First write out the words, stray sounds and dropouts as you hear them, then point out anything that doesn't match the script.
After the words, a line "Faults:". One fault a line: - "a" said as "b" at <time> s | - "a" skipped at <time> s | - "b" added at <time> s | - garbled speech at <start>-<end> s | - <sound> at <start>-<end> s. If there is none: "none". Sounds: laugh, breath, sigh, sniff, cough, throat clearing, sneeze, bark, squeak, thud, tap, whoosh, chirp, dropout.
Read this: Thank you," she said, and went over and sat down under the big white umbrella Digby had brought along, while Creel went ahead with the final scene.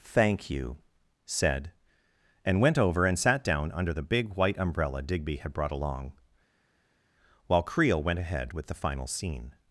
Thank you," said, and went over and sat down under the big white umbrella Digby had brought along, while Creel went ahead with the final scene.
Faults:
- "she" skipped at 0.8 s